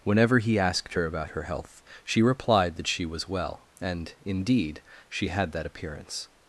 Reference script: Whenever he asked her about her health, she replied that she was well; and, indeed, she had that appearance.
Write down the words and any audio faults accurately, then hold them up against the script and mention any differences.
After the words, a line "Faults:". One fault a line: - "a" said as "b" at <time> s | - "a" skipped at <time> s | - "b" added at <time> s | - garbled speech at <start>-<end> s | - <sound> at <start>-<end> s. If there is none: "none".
Whenever he asked her about her health, she replied that she was well; and, indeed, she had that appearance.
Faults:
none